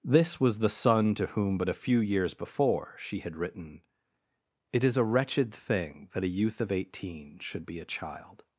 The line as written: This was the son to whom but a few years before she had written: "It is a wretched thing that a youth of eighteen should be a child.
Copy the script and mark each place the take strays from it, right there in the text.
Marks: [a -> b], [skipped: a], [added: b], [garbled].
This was the son to whom but a few years before she had written: "It is a wretched thing that a youth of eighteen should be a child.